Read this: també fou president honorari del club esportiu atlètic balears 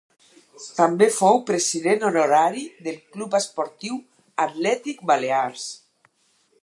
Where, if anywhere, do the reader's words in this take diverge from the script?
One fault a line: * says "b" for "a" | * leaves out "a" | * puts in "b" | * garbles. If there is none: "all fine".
all fine